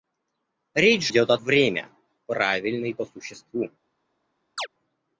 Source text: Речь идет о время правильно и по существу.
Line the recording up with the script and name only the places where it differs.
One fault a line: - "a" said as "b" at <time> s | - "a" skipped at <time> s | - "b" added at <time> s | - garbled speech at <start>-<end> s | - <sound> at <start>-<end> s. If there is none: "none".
- chirp at 4.6-4.7 s